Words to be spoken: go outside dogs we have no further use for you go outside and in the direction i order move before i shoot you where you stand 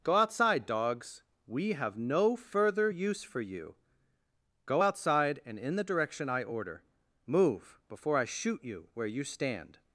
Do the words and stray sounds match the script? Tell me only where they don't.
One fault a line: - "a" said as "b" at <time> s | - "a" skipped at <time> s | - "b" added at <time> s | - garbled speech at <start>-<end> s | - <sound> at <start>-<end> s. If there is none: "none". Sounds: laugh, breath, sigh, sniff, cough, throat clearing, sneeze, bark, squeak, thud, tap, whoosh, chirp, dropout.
none